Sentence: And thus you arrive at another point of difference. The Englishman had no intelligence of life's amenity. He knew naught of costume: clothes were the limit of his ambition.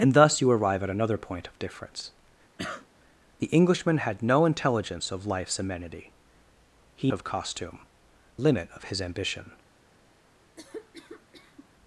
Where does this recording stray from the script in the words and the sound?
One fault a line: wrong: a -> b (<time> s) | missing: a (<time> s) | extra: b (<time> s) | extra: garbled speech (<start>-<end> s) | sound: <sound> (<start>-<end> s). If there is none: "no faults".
sound: cough (2.6-2.9 s)
missing: knew naught (7.1 s)
missing: clothes were the (7.9 s)
sound: cough (10.6-11.7 s)